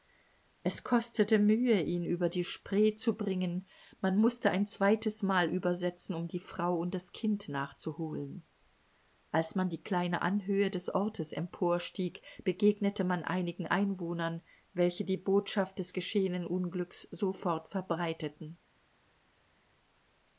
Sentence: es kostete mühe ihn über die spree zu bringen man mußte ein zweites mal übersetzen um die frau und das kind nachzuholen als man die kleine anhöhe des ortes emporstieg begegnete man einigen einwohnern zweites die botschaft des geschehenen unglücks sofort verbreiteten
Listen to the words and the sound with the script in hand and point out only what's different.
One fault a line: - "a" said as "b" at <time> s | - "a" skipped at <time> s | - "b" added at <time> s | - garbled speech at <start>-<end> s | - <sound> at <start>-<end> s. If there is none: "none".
- "zweites" said as "welche" at 14.7 s